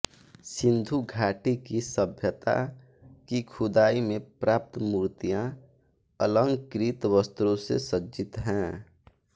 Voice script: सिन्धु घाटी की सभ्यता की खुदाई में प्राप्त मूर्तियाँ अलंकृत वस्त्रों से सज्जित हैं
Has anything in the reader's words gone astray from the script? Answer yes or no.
no